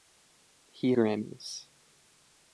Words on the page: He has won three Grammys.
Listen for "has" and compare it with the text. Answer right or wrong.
wrong